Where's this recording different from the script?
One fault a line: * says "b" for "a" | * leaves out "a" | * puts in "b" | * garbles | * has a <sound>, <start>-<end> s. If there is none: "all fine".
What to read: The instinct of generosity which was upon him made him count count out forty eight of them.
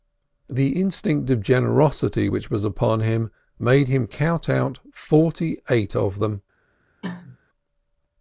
* leaves out "count"
* has a cough, 7.0-7.4 s